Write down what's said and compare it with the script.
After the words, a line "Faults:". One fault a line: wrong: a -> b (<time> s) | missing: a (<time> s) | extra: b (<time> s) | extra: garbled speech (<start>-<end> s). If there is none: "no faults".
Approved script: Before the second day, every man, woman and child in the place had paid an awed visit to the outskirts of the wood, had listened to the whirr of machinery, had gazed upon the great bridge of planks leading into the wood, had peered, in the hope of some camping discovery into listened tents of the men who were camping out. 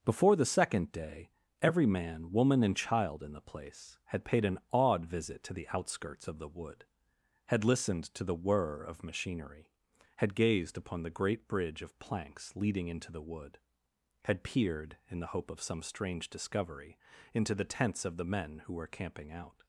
Before the second day, every man, woman and child in the place had paid an awed visit to the outskirts of the wood, had listened to the whirr of machinery, had gazed upon the great bridge of planks leading into the wood, had peered, in the hope of some strange discovery into the tents of the men who were camping out.
Faults:
wrong: camping -> strange (15.8 s)
wrong: listened -> the (17.5 s)